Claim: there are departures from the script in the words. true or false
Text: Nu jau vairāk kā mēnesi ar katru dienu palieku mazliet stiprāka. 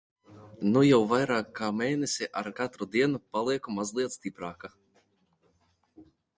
false